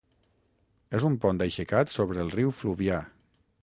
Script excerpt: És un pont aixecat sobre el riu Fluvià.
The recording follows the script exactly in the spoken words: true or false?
true